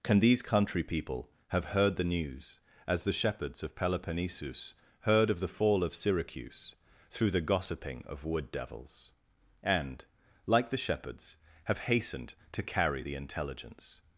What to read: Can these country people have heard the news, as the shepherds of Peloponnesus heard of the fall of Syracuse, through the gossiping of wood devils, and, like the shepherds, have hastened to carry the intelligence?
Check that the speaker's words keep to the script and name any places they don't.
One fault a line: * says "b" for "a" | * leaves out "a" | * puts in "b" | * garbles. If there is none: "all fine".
all fine